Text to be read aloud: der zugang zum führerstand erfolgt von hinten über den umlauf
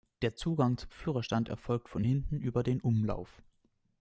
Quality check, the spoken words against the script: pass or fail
pass